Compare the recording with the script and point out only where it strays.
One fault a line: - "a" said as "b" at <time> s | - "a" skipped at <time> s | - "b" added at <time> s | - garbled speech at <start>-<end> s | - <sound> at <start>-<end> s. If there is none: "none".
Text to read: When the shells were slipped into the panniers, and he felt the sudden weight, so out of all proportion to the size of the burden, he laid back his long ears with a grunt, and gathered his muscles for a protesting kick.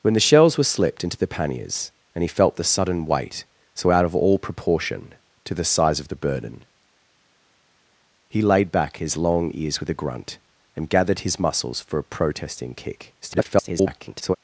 - garbled speech at 13.2-14.4 s